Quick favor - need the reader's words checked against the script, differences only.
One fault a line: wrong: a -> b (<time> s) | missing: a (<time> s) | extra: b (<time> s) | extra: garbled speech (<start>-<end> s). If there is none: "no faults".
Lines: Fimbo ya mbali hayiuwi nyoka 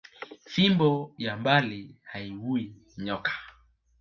no faults